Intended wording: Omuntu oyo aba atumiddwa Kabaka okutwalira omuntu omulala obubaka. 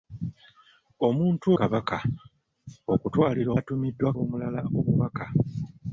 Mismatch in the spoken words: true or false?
true